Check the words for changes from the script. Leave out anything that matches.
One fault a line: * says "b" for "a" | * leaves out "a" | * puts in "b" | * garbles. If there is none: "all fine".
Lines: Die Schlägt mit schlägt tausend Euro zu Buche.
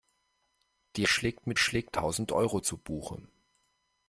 all fine